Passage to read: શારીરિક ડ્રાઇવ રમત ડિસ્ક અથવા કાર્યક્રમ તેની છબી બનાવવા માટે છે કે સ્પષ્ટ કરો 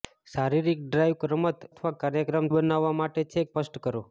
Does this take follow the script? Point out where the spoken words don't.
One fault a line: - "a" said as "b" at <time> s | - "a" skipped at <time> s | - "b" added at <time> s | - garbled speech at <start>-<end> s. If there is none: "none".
- "ડિસ્ક" skipped at 1.7 s
- "તેની છબી" skipped at 2.5 s
- "કે" skipped at 3.5 s